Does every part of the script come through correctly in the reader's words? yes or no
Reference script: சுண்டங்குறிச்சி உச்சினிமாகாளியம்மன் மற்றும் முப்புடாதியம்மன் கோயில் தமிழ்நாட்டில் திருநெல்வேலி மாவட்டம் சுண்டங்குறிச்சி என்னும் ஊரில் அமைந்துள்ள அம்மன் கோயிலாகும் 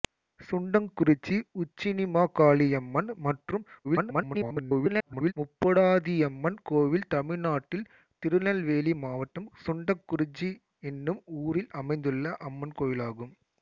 no